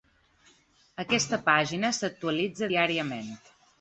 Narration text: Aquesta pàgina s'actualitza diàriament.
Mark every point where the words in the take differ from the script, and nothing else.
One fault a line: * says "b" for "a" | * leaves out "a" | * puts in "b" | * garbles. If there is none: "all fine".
all fine